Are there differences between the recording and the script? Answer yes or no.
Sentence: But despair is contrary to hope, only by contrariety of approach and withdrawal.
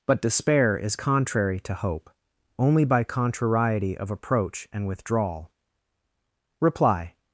yes